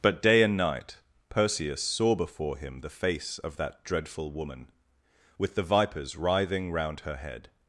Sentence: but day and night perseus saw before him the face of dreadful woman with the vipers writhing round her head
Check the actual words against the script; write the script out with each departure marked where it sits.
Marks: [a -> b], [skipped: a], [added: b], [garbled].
but day and night perseus saw before him the face of [added: that] dreadful woman with the vipers writhing round her head